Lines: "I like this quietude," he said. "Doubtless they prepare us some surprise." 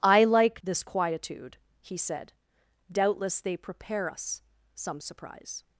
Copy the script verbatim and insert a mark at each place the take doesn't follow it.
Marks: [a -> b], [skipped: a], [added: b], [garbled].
"I like this quietude," he said. "Doubtless they prepare us some surprise."